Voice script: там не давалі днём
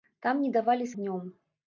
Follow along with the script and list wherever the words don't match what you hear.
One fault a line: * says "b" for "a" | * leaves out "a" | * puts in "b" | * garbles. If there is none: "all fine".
all fine